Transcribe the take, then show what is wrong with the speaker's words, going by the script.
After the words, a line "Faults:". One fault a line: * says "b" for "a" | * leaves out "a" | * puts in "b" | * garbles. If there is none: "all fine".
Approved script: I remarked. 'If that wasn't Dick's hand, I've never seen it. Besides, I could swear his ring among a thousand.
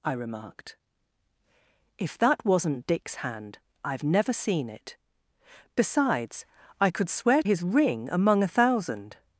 I remarked. 'If that wasn't Dick's hand, I've never seen it. Besides, I could swear his ring among a thousand.
Faults:
all fine